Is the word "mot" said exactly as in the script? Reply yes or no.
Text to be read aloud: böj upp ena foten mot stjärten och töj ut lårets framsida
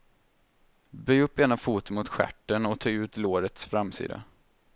yes